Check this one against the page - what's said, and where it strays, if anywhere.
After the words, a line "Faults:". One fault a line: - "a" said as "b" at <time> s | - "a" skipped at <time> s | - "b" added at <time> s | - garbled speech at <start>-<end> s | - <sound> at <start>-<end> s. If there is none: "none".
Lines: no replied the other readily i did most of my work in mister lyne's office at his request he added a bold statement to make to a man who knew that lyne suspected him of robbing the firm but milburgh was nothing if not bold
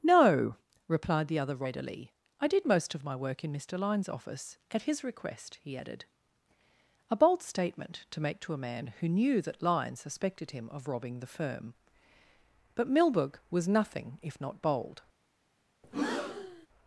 no replied the other readily i did most of my work in mister lyne's office at his request he added a bold statement to make to a man who knew that lyne suspected him of robbing the firm but milburgh was nothing if not bold
Faults:
- breath at 15.8-16.7 s